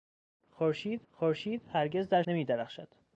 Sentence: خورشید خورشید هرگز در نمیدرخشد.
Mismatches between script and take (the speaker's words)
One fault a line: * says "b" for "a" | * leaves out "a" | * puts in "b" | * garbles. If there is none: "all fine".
all fine